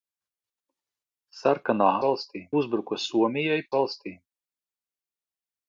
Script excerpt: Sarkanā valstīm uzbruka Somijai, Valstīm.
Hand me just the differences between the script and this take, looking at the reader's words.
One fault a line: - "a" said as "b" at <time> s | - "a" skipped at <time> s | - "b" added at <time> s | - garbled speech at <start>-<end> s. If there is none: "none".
none